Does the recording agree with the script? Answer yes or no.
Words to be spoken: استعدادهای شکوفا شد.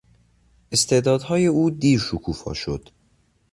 no